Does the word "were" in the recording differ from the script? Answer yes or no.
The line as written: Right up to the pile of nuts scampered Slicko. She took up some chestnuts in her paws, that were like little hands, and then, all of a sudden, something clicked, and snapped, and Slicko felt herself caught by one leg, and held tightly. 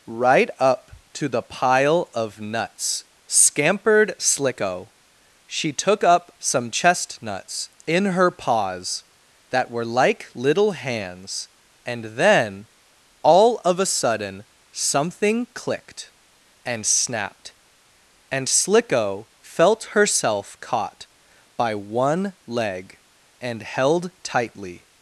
no